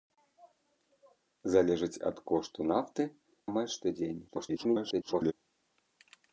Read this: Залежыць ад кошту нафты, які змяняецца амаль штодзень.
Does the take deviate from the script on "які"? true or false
true